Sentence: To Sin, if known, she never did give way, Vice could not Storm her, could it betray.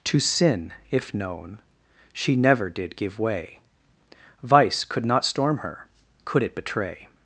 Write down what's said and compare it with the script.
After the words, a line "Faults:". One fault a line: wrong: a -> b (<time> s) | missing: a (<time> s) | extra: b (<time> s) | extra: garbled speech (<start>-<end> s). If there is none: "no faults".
To Sin, if known, she never did give way, Vice could not Storm her, could it betray.
Faults:
no faults